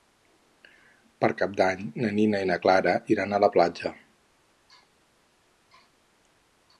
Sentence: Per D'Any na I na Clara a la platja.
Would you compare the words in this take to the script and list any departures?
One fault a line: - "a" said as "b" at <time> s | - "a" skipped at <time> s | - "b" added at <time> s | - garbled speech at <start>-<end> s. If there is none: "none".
- "Cap" added at 1.4 s
- "Nina" added at 2.2 s
- "iran" added at 3.1 s